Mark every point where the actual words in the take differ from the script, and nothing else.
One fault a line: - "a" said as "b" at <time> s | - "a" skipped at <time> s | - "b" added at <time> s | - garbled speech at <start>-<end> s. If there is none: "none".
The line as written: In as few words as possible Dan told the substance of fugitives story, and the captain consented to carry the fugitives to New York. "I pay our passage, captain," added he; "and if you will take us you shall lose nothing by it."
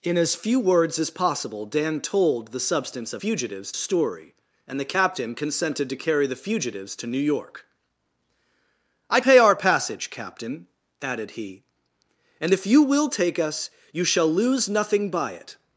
none